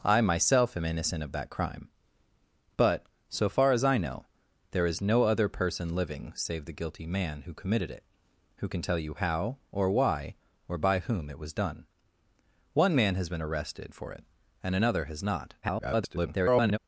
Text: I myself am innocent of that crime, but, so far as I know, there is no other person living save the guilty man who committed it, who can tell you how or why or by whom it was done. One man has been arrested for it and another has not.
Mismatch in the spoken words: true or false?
true